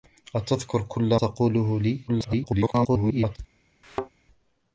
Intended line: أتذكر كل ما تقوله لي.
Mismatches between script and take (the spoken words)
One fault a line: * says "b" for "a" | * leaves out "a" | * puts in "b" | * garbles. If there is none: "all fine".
* leaves out "ما"
* garbles